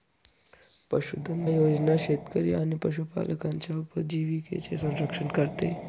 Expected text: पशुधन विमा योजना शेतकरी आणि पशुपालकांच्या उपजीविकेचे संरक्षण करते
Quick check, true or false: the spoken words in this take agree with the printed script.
false